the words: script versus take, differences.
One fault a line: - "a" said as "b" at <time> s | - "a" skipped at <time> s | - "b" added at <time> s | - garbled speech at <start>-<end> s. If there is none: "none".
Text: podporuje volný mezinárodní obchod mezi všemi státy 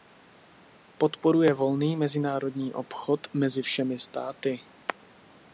none